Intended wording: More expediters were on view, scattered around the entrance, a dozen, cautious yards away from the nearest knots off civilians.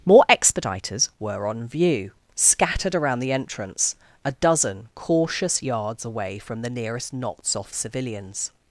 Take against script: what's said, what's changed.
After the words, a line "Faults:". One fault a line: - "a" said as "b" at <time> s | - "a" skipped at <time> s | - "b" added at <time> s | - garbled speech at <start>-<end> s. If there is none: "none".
More expediters were on view, scattered around the entrance, a dozen, cautious yards away from the nearest knots off civilians.
Faults:
none